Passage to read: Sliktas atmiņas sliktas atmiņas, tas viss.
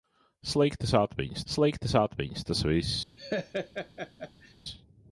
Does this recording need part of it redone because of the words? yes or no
no